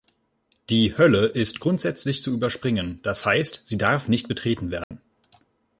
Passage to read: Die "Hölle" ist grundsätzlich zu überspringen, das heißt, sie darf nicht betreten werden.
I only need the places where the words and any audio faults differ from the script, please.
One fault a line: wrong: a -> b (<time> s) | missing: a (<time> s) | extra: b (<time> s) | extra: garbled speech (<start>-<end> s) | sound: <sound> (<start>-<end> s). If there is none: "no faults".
sound: dropout (4.8-4.9 s)